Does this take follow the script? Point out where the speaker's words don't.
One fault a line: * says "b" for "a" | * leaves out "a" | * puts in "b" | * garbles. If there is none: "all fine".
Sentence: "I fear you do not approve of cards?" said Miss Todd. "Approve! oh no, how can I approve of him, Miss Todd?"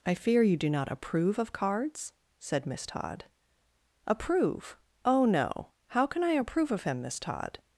all fine